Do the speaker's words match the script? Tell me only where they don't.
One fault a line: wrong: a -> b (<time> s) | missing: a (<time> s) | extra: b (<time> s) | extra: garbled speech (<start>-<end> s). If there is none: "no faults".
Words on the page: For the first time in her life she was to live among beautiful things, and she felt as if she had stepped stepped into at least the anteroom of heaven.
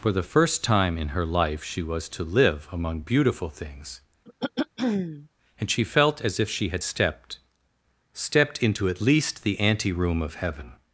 no faults